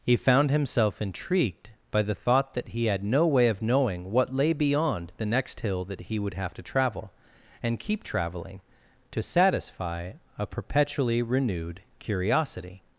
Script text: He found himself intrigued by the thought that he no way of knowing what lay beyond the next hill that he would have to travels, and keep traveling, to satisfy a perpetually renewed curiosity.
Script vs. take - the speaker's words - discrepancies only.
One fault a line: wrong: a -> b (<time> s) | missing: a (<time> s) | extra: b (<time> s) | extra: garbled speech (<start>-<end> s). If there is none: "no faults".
extra: had (2.9 s)
wrong: travels -> travel (6.6 s)